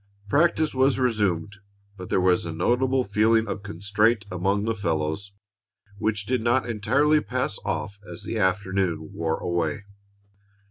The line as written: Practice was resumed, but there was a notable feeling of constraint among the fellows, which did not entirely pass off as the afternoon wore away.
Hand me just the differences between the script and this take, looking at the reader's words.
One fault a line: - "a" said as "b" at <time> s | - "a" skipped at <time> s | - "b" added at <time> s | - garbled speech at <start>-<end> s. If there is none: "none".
none